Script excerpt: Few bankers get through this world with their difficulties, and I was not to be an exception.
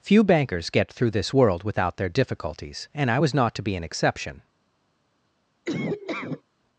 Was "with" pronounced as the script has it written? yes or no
no